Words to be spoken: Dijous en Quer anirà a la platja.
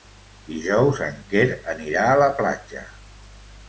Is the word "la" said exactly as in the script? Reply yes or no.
yes